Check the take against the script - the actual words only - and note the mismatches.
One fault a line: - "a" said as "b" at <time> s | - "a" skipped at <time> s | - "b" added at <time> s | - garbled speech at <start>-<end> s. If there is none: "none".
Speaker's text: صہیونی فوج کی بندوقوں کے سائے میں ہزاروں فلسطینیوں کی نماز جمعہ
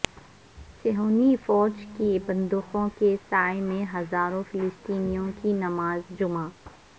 none